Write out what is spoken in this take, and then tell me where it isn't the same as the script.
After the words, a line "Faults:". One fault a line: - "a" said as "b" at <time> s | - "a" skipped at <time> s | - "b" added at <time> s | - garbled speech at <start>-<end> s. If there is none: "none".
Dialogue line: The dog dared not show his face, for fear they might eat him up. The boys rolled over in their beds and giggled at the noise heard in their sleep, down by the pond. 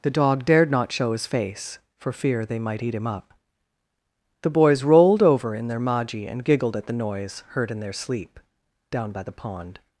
The dog dared not show his face, for fear they might eat him up. The boys rolled over in their maji and giggled at the noise heard in their sleep, down by the pond.
Faults:
- "beds" said as "maji" at 5.8 s